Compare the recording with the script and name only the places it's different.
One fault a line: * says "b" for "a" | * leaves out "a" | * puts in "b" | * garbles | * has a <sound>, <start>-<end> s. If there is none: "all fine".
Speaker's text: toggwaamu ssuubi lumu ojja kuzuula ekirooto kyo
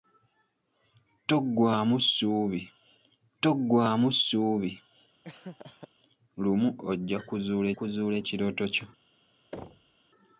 * puts in "toggwaamu ssuubi"
* has a laugh, 5.2-5.9 s
* puts in "kuzuula"
* has a thud, 9.5-10.0 s